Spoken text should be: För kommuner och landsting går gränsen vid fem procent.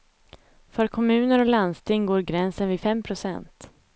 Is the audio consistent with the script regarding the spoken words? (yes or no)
yes